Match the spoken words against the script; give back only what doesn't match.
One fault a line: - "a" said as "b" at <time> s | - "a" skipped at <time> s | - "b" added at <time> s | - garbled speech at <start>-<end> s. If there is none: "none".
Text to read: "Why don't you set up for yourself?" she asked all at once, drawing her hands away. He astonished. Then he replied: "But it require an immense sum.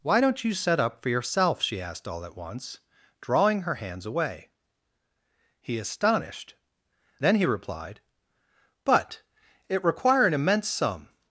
none